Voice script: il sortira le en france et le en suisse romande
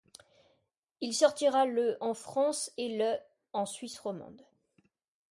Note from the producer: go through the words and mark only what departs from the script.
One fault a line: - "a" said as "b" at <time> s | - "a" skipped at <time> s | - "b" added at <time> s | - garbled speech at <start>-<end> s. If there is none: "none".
none